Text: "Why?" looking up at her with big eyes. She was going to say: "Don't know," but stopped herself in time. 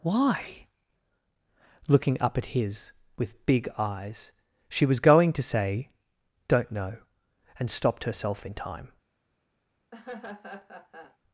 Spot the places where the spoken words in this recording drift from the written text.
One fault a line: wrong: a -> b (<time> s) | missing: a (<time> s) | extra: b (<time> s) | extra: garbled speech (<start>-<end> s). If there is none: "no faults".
wrong: her -> his (2.5 s)
wrong: but -> and (7.6 s)